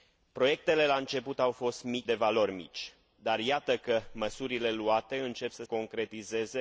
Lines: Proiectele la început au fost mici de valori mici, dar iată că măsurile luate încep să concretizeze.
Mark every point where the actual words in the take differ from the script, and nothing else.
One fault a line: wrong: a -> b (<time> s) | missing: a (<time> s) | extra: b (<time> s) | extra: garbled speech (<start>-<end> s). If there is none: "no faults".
no faults